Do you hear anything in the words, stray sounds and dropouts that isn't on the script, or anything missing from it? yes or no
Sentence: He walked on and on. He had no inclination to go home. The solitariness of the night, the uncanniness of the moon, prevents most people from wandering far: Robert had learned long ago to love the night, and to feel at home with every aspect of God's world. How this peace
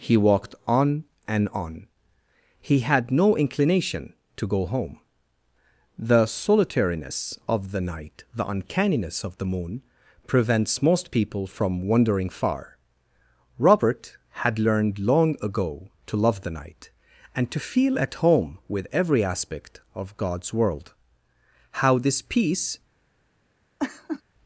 yes